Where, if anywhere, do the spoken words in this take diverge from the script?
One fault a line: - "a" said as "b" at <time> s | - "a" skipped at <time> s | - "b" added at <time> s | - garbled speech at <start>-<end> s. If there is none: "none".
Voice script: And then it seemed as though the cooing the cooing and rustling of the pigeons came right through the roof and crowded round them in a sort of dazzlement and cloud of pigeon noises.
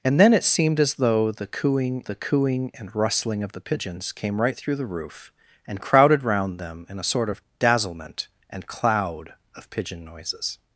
none